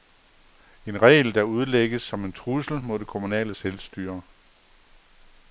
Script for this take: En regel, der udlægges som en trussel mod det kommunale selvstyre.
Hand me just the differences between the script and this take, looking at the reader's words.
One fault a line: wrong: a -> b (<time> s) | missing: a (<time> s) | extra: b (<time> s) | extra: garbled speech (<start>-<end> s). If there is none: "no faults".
no faults